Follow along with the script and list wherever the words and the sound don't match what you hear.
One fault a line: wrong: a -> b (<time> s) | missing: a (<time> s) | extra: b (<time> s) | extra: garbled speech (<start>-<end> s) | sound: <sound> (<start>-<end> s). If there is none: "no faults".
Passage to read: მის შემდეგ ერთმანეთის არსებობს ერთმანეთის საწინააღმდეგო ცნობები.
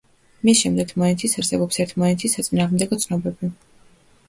no faults